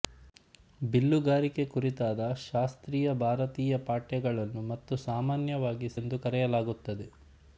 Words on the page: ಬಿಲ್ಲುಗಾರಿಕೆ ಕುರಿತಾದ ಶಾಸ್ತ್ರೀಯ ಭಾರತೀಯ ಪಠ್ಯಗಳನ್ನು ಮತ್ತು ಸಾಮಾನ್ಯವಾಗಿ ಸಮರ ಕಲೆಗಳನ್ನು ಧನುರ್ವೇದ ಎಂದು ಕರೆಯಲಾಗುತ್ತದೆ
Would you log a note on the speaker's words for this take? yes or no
yes